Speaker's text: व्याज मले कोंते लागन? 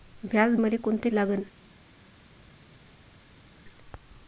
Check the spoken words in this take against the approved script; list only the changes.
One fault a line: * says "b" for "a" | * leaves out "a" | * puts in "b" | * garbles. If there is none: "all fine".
all fine